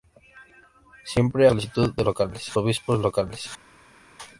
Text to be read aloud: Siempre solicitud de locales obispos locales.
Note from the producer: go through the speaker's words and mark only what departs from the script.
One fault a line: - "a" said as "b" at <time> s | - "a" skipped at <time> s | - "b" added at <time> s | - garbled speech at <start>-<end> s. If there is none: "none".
none